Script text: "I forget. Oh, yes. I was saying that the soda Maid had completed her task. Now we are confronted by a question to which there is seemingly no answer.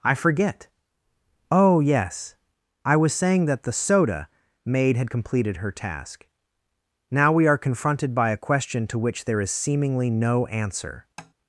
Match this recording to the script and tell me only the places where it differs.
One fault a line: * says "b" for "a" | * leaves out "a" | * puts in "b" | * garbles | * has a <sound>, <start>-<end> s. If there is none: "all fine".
* has a tap, 11.2-11.3 s